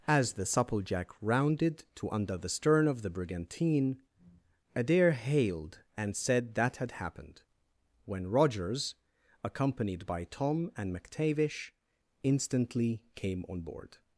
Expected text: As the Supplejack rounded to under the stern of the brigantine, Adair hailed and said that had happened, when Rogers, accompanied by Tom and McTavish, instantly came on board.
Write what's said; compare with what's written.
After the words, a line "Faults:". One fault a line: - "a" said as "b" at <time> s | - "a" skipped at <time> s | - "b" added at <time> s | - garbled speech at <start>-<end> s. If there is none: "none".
As the Supplejack rounded to under the stern of the brigantine, Adair hailed and said that had happened, when Rogers, accompanied by Tom and McTavish, instantly came on board.
Faults:
none